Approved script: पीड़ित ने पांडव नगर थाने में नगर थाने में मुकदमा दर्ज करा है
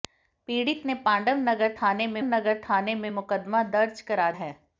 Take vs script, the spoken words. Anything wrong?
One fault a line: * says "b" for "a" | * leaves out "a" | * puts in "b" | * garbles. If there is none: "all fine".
all fine